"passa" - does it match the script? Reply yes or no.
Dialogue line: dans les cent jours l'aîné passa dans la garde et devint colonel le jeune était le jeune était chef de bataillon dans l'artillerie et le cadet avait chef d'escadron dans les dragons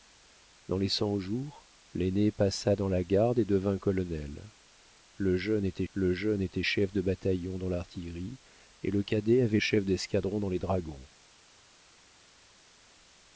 yes